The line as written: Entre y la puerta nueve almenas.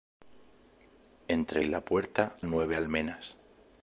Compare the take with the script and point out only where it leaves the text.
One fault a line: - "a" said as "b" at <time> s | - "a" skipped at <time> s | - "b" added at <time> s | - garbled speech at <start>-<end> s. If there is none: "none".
none